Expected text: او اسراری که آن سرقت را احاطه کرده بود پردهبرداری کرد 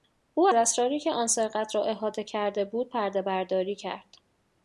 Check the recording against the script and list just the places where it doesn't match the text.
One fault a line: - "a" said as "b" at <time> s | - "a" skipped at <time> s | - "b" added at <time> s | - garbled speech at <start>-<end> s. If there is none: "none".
none